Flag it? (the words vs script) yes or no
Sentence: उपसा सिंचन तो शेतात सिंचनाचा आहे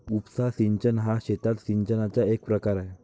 yes